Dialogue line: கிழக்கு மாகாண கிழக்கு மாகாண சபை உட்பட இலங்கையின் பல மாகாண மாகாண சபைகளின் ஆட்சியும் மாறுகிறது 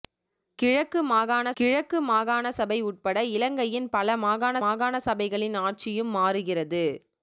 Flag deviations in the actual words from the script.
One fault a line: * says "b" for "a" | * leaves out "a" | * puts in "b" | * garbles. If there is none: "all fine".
all fine